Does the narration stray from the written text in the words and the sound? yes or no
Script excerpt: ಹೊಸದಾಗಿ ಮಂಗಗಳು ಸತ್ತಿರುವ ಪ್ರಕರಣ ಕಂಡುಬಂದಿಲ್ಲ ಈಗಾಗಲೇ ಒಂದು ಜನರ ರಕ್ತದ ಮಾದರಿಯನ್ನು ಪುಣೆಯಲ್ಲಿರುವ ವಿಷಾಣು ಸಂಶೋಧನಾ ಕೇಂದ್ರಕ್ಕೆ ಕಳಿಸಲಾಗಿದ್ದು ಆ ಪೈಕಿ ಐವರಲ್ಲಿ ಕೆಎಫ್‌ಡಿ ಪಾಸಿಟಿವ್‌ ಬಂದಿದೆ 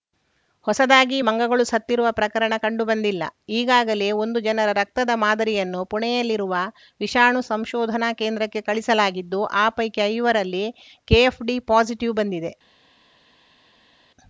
no